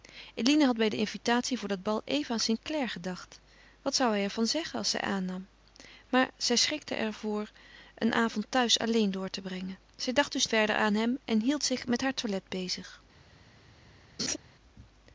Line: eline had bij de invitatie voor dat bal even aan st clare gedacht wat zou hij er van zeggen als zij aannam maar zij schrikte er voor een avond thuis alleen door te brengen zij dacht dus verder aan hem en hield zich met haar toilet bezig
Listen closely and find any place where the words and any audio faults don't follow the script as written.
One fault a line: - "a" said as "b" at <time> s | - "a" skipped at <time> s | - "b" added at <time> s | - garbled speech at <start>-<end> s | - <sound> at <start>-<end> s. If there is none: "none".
- laugh at 14.2-14.4 s